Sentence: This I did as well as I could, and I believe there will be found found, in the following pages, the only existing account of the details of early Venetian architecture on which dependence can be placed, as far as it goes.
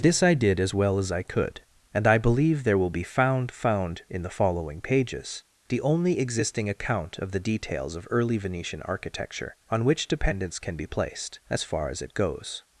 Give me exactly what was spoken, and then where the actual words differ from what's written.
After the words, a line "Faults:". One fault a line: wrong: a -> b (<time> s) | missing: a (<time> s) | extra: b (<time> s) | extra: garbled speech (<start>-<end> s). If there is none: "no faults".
This I did as well as I could, and I believe there will be found found, in the following pages, the only existing account of the details of early Venetian architecture on which dependence can be placed, as far as it goes.
Faults:
no faults